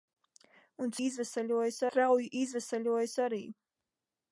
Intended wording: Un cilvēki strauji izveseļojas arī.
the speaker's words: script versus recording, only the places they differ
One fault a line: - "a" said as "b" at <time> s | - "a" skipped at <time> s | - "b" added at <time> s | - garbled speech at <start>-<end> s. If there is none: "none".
- "cilvēki" said as "izveseļojas" at 1.1 s